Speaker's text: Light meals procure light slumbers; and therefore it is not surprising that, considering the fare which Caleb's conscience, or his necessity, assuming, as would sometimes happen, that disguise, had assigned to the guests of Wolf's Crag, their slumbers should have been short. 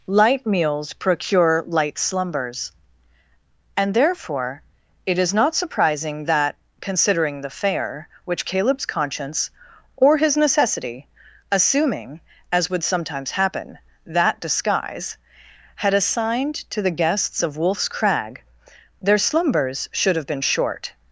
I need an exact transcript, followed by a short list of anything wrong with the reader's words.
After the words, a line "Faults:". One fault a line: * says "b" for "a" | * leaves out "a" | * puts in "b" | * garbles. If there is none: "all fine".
Light meals procure light slumbers; and therefore it is not surprising that, considering the fare which Caleb's conscience, or his necessity, assuming, as would sometimes happen, that disguise, had assigned to the guests of Wolf's Crag, their slumbers should have been short.
Faults:
all fine